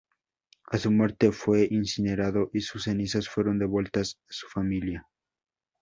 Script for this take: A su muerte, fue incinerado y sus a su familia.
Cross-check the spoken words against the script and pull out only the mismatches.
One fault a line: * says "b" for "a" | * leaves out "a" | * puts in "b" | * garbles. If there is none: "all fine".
* puts in "cenizas fueron devueltas"